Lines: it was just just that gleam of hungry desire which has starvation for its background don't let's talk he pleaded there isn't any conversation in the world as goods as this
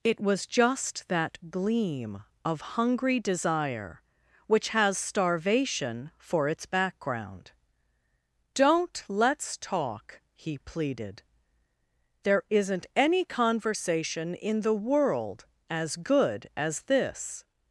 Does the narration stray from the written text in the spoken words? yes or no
yes